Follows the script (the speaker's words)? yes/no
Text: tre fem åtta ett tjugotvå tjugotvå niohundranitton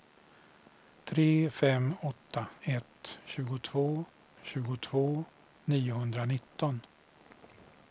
yes